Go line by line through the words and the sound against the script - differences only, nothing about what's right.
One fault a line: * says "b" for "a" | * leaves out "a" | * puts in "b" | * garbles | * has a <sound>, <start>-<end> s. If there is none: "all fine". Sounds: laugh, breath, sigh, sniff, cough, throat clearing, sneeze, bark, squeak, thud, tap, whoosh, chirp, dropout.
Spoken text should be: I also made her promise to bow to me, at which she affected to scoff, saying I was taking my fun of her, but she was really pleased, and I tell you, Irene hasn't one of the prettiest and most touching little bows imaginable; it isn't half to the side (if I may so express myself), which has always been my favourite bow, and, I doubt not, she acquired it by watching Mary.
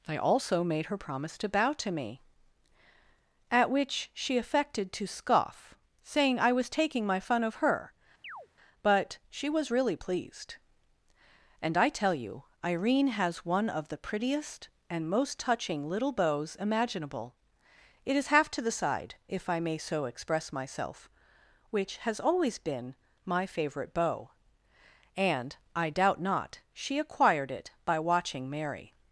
* has a chirp, 8.2-8.5 s
* says "has" for "hasn't"
* says "is" for "isn't"